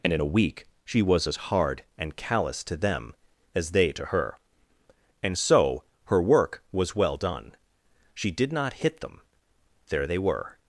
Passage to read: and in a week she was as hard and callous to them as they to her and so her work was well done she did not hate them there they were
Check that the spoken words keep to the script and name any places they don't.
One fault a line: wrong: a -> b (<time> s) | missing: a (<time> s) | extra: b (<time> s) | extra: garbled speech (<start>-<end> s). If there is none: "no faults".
wrong: hate -> hit (8.7 s)